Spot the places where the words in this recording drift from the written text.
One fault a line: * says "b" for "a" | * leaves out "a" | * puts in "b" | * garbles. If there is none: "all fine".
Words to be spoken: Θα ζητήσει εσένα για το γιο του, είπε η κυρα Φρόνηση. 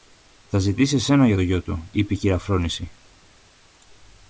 all fine